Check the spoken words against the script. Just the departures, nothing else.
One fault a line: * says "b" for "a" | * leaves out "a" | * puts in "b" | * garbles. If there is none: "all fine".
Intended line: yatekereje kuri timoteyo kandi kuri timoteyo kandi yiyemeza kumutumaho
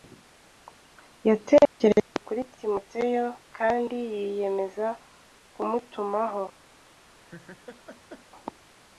* leaves out "kuri timoteyo kandi"